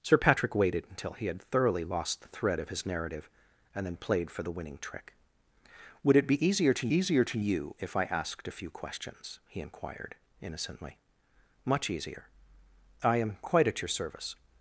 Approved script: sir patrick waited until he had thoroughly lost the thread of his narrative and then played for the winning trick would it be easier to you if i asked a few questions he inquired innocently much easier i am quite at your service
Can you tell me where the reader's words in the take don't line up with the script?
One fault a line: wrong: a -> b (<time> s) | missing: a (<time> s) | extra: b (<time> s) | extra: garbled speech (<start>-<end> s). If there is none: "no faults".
extra: easier to (6.9 s)